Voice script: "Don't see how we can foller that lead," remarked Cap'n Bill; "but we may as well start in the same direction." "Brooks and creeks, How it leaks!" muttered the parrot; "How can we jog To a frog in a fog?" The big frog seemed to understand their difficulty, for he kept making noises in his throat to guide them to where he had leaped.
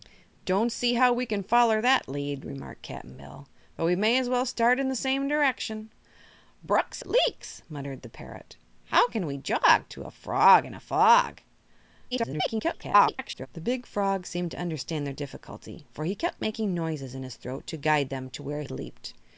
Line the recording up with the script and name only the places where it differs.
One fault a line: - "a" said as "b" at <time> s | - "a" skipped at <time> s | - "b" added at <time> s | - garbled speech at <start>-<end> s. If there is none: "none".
- "and creeks How" skipped at 7.0 s
- garbled speech at 12.1-13.5 s
- "he" skipped at 18.6 s